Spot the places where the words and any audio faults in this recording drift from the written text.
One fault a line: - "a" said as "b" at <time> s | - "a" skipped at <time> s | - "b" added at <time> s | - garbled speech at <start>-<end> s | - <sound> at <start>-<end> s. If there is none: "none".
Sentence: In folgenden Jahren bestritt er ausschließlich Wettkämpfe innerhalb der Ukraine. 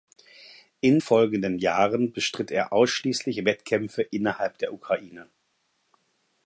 none